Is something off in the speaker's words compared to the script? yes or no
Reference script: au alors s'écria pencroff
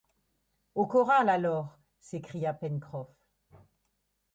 yes